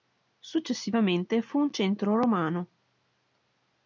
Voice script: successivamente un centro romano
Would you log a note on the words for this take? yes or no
yes